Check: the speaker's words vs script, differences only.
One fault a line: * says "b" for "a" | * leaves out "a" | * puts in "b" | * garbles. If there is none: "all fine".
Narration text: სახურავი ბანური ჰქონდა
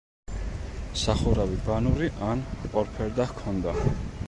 * puts in "ან ორფერდა"